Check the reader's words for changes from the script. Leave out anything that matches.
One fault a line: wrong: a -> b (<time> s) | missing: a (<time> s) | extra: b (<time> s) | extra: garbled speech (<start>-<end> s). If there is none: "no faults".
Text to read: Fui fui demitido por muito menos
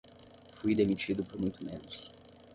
missing: fui (0.7 s)